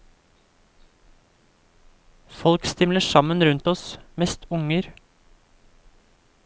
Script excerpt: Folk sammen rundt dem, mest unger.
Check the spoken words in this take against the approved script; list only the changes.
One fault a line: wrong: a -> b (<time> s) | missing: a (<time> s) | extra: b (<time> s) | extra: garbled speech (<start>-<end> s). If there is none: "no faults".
extra: stimler (2.6 s)
wrong: dem -> oss (3.7 s)